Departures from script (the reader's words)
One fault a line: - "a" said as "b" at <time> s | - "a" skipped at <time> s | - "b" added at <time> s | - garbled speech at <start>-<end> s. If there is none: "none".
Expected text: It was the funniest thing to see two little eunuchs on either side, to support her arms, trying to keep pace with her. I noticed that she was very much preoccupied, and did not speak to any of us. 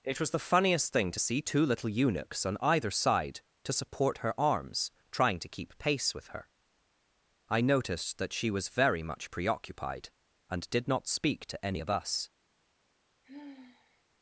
none